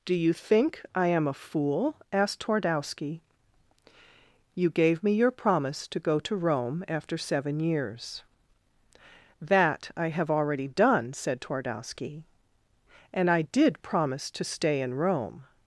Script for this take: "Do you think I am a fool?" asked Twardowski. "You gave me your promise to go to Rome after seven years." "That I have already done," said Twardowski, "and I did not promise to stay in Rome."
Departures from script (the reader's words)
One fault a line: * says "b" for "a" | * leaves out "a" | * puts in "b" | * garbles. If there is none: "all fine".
* leaves out "not"